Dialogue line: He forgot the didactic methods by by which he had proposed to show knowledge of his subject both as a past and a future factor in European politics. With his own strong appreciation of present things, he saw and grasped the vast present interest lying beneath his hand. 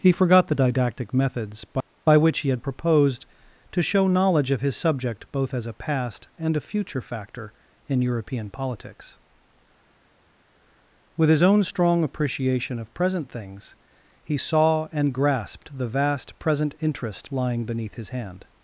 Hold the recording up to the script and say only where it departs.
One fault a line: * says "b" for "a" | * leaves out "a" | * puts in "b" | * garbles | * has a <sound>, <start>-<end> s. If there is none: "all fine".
all fine